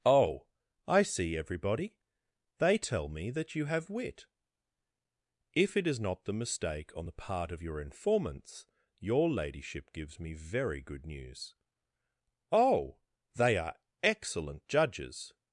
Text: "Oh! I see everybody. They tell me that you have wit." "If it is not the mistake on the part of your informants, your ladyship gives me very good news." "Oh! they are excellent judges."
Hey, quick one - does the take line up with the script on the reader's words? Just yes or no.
yes